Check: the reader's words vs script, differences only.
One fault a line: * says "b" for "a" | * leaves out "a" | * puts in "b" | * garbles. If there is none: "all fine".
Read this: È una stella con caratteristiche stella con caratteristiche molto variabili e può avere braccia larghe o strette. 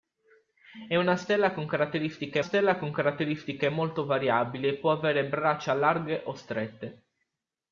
all fine